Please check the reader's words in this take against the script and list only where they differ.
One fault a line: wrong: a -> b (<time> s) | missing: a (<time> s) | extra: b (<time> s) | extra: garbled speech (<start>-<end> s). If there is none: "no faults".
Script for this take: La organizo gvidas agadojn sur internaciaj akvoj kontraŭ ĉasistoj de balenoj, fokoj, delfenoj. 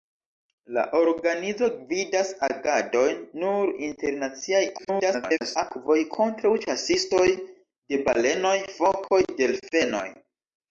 extra: garbled speech (4.8-5.6 s)